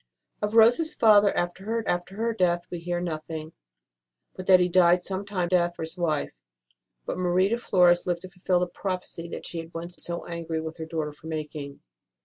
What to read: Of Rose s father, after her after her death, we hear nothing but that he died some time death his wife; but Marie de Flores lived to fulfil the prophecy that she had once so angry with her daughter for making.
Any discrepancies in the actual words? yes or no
no